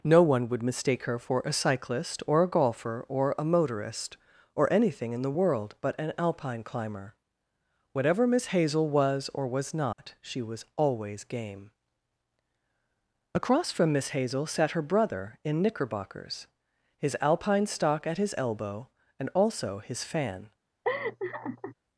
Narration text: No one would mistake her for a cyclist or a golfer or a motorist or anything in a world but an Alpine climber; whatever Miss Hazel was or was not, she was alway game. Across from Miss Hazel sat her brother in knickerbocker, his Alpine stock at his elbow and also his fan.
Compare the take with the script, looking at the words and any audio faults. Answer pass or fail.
fail